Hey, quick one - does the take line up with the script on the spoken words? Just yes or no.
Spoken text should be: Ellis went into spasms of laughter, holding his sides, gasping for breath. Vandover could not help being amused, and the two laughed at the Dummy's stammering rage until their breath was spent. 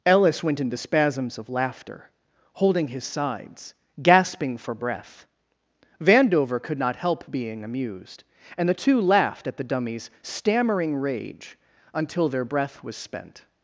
yes